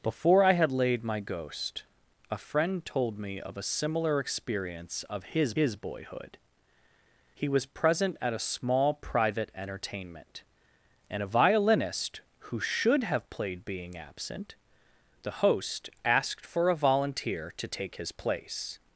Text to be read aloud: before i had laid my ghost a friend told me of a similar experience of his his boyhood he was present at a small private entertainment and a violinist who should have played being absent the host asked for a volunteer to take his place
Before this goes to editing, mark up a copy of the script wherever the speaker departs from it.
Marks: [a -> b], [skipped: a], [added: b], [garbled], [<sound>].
before i had laid my ghost a friend told me of a similar experience of his his boyhood he was present at a small private entertainment and a violinist who should have played being absent the host asked for a volunteer to take his place